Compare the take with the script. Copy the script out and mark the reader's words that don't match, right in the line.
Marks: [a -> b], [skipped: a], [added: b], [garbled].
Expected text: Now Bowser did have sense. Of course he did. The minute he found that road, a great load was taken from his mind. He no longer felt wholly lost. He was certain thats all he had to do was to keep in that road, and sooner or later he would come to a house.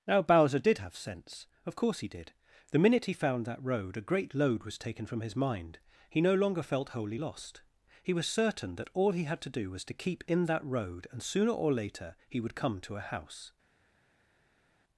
Now Bowser did have sense. Of course he did. The minute he found that road, a great load was taken from his mind. He no longer felt wholly lost. He was certain [thats -> that] all he had to do was to keep in that road, and sooner or later he would come to a house.